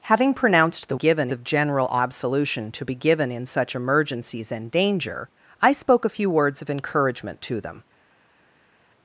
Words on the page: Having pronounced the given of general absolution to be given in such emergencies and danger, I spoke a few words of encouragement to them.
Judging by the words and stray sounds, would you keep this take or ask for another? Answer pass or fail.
pass